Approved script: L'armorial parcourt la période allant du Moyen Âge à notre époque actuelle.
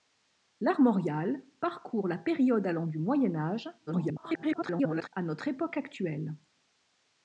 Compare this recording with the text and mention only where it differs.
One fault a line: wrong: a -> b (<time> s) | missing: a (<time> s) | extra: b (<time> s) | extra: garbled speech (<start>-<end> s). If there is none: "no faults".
extra: garbled speech (3.9-5.1 s)